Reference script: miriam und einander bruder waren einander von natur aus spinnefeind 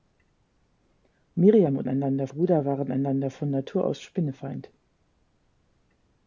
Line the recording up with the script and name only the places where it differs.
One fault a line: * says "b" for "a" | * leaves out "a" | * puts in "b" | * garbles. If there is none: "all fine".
all fine